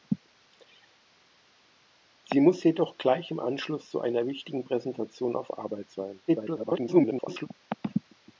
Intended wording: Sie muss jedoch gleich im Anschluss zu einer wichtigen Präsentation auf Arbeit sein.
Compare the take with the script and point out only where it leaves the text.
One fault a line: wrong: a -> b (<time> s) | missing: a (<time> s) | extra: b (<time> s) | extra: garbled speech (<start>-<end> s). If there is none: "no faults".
extra: garbled speech (6.3-7.5 s)